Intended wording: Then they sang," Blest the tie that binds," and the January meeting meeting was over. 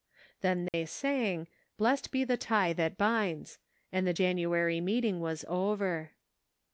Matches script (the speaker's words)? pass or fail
fail